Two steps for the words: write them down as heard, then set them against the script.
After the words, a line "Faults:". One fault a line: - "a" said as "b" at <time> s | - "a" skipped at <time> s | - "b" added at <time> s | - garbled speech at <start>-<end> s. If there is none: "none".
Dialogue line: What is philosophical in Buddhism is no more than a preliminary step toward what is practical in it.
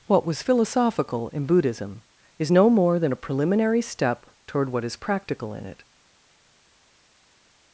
What was philosophical in Buddhism is no more than a preliminary step toward what is practical in it.
Faults:
- "is" said as "was" at 0.2 s